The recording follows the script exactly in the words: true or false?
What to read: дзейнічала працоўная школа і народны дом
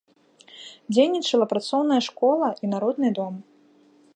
true